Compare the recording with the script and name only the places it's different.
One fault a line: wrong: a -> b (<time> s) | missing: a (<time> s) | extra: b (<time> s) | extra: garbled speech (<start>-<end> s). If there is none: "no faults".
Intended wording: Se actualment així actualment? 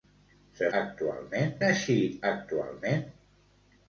no faults